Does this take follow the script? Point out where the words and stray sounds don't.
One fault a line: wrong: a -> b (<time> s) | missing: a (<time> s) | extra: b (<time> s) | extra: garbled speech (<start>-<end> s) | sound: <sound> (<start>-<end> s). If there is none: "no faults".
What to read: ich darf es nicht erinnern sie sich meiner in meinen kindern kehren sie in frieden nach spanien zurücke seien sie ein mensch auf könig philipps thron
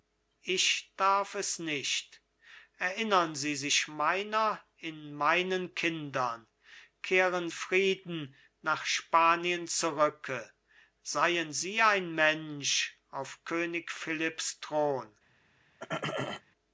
missing: sie in (7.5 s)
sound: throat clearing (15.8-16.4 s)